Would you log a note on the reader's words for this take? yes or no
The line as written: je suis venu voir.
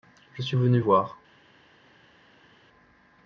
no